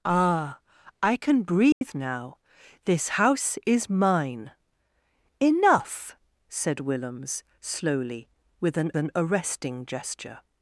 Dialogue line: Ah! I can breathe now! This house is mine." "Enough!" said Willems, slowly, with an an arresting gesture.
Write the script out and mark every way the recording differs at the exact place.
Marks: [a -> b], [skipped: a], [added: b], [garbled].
Ah! I can breathe now! This house is mine." "Enough!" said Willems, slowly, with an an arresting gesture.